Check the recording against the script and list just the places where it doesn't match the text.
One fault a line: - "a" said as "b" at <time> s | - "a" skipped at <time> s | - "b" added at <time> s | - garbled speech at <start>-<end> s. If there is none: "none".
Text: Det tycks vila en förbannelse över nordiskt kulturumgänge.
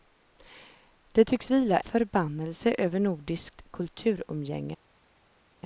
- "en" skipped at 1.8 s